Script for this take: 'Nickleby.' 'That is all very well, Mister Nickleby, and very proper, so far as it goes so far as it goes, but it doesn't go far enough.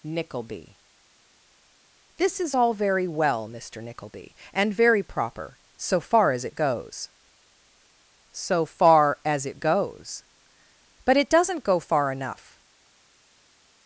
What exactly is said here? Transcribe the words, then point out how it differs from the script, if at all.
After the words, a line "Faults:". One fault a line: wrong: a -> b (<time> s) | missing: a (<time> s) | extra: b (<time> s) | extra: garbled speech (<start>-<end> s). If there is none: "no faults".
'Nickleby.' 'This is all very well, Mister Nickleby, and very proper, so far as it goes so far as it goes, but it doesn't go far enough.
Faults:
wrong: That -> This (2.2 s)